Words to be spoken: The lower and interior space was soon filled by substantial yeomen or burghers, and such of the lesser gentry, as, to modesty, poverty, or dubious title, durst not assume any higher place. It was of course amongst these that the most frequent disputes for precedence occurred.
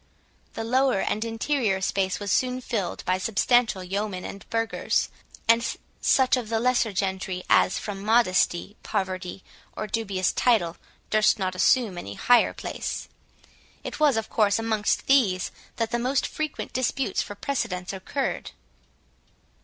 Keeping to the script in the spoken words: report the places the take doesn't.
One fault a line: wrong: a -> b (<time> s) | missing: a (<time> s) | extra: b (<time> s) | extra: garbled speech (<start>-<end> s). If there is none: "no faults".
wrong: or -> and (4.2 s)
wrong: to -> from (7.8 s)